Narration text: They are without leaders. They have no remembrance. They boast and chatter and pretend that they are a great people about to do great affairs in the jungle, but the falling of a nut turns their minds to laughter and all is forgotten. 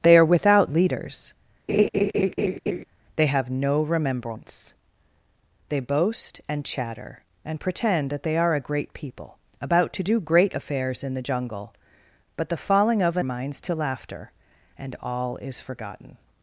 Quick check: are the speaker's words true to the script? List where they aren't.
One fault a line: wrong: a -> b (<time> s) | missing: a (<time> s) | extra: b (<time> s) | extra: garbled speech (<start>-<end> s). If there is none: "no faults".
missing: nut turns their (13.2 s)